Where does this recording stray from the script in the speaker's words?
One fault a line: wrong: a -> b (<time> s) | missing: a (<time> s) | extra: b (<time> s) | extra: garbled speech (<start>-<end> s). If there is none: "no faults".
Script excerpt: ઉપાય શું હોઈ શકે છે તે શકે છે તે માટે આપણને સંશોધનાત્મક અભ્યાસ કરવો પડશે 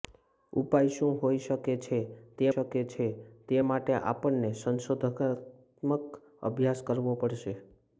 no faults